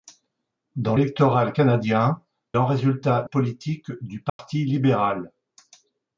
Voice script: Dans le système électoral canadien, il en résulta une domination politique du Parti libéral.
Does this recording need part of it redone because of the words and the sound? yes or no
yes